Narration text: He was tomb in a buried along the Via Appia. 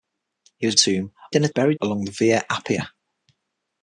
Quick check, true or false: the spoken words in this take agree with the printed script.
true